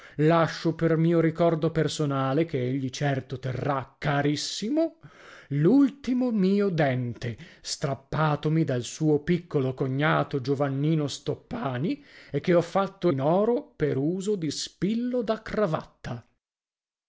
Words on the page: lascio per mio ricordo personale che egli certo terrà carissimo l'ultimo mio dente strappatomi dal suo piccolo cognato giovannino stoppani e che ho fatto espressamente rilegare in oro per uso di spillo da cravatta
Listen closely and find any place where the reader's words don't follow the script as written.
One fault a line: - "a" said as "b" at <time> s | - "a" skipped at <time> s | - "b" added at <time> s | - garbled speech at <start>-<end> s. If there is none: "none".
- "espressamente rilegare" skipped at 13.1 s